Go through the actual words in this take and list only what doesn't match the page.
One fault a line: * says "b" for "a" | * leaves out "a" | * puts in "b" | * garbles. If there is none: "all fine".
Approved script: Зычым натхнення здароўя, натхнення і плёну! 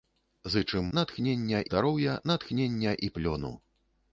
all fine